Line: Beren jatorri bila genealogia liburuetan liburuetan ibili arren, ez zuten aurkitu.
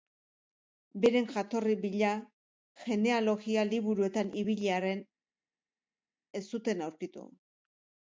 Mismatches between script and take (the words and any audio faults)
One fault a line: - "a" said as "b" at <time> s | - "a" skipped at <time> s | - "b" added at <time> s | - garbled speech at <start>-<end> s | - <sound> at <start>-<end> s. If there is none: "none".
- "liburuetan" skipped at 4.3 s